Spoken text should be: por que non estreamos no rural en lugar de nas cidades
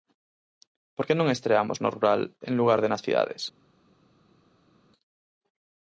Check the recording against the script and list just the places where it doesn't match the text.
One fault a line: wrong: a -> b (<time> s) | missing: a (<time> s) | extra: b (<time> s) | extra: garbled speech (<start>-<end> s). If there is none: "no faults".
no faults